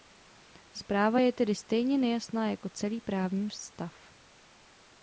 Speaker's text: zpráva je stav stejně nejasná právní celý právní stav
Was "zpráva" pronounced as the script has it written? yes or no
yes